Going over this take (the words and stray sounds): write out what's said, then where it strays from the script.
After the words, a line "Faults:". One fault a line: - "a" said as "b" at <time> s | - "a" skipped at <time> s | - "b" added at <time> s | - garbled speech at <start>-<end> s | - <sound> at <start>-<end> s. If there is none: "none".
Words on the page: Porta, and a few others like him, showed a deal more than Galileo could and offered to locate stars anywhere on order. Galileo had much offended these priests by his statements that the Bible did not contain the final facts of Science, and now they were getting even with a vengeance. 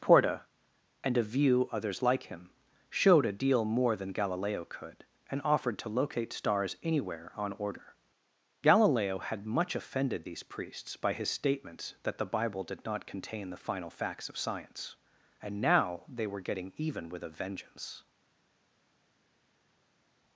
Porta, and a view others like him, showed a deal more than Galileo could and offered to locate stars anywhere on order. Galileo had much offended these priests by his statements that the Bible did not contain the final facts of Science, and now they were getting even with a vengeance.
Faults:
- "few" said as "view" at 1.2 s